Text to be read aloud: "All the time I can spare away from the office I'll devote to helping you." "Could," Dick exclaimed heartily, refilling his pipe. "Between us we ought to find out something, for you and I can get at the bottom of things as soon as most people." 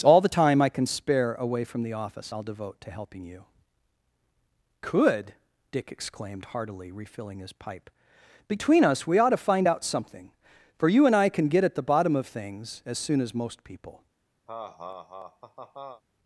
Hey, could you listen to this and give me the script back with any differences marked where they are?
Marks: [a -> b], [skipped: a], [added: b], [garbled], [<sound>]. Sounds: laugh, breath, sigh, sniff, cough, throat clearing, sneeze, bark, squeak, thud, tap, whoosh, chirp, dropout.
"All the time I can spare away from the office I'll devote to helping you." "Could," Dick exclaimed heartily, refilling his pipe. "Between us we ought to find out something, for you and I can get at the bottom of things as soon as most people." [laugh]